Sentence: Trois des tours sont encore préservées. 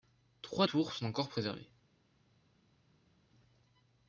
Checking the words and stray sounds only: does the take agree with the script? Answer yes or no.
no